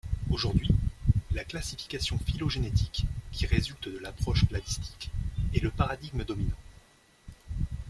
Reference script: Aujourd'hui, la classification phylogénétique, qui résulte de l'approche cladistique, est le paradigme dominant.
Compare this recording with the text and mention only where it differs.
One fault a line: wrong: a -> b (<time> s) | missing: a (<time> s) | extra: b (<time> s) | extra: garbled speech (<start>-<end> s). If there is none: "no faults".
no faults